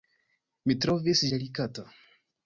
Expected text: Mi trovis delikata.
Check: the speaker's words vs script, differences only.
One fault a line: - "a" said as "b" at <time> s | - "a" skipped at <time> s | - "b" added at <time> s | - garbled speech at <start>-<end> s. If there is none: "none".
none